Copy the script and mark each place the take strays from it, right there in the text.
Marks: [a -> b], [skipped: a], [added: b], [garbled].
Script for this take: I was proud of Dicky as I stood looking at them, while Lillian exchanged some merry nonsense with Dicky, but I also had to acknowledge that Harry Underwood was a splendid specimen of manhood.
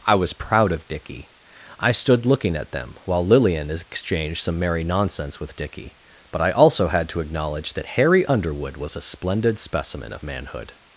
I was proud of Dicky [skipped: as] I stood looking at them, while Lillian exchanged some merry nonsense with Dicky, but I also had to acknowledge that Harry Underwood was a splendid specimen of manhood.